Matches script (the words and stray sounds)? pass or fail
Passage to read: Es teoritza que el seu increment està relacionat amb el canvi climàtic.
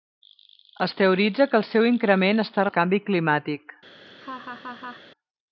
fail